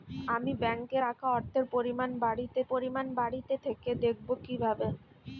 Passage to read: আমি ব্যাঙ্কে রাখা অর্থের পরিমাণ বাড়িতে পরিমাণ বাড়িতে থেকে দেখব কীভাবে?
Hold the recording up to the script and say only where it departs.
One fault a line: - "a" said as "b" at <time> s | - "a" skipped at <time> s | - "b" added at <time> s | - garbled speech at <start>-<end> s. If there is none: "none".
none